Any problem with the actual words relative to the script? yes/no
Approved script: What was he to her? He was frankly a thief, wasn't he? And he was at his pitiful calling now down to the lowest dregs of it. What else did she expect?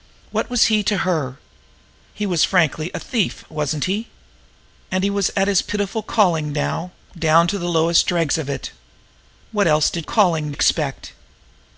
yes